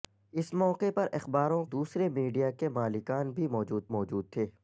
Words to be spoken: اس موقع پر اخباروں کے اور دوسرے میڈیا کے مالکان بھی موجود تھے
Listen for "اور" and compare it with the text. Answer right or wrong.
wrong